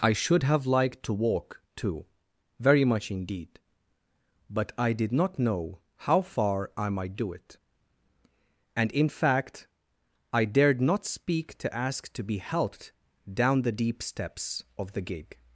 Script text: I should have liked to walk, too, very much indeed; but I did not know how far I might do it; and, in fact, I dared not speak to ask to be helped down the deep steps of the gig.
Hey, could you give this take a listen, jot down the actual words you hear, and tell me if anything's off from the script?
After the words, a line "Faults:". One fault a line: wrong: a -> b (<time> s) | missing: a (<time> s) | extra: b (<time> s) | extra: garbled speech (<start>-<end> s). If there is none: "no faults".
I should have liked to walk, too, very much indeed; but I did not know how far I might do it; and, in fact, I dared not speak to ask to be helped down the deep steps of the gig.
Faults:
no faults